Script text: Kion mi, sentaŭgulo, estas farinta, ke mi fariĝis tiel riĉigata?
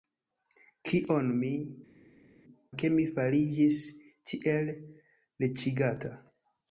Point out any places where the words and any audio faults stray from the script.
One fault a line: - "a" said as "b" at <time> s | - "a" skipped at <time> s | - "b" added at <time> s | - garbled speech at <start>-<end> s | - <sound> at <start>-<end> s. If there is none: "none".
- "sentaŭgulo estas farinta" skipped at 1.5 s